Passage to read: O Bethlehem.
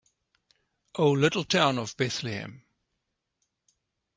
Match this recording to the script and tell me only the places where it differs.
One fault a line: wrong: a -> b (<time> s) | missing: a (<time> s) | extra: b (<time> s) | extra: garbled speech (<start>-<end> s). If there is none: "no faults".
extra: little town of (1.1 s)